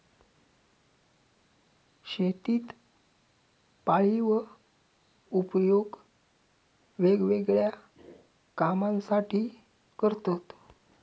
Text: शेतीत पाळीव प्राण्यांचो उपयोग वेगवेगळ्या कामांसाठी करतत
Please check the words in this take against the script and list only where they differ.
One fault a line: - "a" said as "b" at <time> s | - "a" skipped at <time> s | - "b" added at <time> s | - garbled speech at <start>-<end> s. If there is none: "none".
- "प्राण्यांचो" skipped at 4.4 s